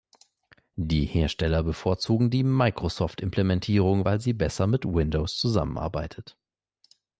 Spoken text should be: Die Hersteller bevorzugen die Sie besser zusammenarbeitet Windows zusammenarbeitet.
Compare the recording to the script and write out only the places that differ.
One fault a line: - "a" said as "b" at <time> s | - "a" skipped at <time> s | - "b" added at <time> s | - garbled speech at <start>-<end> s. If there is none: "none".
- "Microsoft Implementierung weil" added at 2.4 s
- "zusammenarbeitet" said as "mit" at 4.6 s